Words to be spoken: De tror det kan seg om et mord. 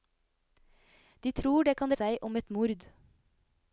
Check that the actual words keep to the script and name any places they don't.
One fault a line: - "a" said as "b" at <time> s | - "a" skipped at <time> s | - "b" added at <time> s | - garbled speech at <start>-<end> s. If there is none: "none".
none